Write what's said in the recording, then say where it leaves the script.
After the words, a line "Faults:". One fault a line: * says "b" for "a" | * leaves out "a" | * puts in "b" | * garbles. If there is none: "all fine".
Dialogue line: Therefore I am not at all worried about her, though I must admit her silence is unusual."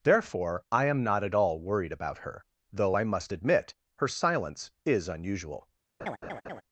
Therefore I am not at all worried about her, though I must admit her silence is unusual."
Faults:
all fine